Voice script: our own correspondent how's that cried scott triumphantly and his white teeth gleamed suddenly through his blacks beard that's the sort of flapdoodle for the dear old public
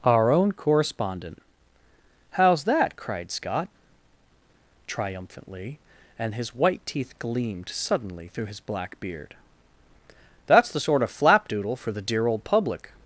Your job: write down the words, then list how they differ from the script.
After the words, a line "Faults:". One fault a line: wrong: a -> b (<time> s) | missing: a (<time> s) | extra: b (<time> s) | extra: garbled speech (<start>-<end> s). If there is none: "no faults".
our own correspondent how's that cried scott triumphantly and his white teeth gleamed suddenly through his black beard that's the sort of flapdoodle for the dear old public
Faults:
wrong: blacks -> black (8.6 s)